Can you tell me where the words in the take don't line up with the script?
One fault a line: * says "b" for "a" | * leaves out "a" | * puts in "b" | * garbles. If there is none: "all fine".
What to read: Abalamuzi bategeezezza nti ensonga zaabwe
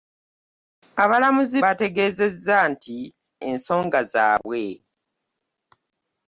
all fine